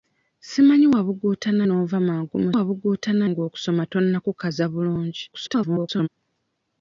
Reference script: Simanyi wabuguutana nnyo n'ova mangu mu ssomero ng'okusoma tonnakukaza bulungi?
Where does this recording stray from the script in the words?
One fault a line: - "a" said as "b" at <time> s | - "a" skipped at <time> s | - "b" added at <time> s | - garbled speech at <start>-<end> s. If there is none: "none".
- "nnyo" skipped at 1.6 s
- "ssomero" said as "wabuguutana" at 2.5 s
- garbled speech at 5.3-6.1 s